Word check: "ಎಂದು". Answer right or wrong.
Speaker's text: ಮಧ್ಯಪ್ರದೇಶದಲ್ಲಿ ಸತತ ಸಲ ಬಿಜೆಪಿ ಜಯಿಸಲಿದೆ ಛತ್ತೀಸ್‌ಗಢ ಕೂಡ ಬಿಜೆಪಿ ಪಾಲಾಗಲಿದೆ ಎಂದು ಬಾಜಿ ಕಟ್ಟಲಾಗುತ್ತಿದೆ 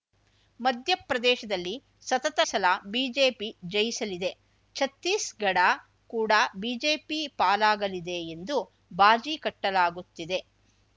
right